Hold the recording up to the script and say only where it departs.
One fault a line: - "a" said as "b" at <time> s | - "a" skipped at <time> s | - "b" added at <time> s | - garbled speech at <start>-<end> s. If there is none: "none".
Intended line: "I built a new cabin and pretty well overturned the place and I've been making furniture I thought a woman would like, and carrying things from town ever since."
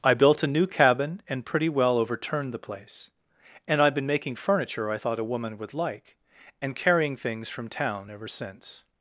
none